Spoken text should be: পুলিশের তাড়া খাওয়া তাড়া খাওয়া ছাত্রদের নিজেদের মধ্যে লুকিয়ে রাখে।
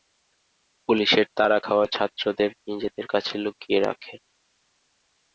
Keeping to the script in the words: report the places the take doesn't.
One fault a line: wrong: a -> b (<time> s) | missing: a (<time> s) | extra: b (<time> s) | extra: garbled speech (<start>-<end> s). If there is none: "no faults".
missing: তাড়া খাওয়া (1.9 s)
wrong: মধ্যে -> কাছে (3.1 s)